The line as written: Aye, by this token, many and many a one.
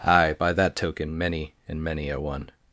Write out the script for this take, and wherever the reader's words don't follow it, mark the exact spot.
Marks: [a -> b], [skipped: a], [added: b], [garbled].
Aye, by [this -> that] token, many and many a one.